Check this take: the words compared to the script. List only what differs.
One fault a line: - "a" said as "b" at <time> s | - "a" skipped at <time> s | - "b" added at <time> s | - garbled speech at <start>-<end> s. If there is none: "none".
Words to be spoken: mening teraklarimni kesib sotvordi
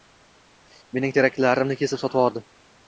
none